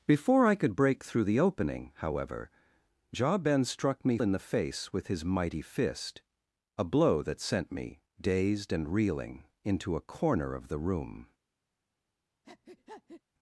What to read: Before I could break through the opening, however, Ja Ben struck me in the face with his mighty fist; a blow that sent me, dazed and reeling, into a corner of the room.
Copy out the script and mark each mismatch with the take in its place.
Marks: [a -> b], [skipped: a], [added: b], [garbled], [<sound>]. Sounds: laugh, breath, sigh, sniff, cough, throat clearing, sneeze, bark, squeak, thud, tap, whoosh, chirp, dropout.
Before I could break through the opening, however, Ja Ben struck me in the face with his mighty fist; a blow that sent me, dazed and reeling, into a corner of the room. [breath]